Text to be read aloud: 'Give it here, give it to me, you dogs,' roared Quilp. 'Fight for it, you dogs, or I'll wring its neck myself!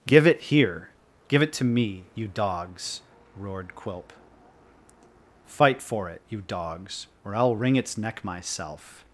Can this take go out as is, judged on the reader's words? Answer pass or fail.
pass